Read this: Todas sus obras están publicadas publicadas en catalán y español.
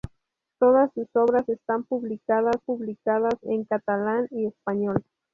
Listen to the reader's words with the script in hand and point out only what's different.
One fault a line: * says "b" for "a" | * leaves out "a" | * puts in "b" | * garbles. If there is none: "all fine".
all fine